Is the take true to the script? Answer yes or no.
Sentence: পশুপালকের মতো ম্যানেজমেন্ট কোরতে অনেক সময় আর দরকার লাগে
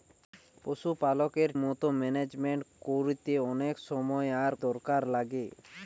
yes